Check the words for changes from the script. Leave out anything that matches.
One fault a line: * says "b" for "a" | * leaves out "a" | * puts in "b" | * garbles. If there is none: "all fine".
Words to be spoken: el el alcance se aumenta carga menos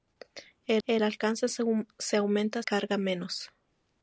all fine